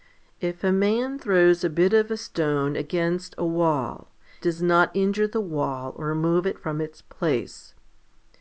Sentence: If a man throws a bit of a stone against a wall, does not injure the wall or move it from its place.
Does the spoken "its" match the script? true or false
true